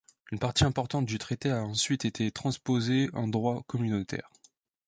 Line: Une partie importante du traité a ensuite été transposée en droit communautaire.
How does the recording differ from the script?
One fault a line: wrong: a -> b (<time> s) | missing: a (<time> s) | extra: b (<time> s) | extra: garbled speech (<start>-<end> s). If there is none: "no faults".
no faults